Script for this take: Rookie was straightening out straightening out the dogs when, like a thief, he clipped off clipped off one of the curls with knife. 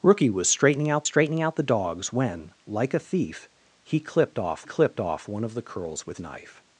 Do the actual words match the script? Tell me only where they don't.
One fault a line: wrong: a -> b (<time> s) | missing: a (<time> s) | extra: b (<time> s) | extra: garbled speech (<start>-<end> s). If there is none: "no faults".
no faults